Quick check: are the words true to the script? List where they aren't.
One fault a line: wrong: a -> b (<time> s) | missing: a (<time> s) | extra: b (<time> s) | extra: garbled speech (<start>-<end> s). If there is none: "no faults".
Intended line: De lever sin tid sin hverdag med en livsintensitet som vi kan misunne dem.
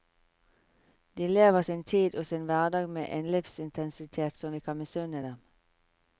extra: og (2.1 s)